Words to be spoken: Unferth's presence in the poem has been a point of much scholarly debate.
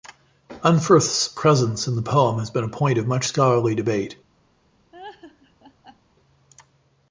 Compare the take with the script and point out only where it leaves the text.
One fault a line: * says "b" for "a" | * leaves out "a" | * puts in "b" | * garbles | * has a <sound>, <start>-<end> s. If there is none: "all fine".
* has a laugh, 4.9-6.0 s